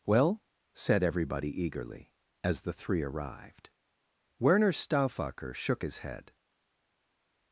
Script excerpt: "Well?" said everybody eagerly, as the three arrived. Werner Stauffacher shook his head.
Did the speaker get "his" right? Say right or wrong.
right